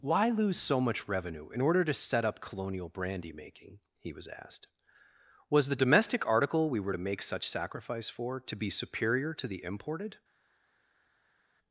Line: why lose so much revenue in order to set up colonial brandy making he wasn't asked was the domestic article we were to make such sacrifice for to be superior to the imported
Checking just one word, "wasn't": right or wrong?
wrong